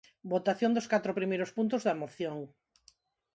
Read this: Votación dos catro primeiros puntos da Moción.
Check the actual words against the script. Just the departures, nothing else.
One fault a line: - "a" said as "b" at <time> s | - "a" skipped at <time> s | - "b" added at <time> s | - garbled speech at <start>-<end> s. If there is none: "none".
none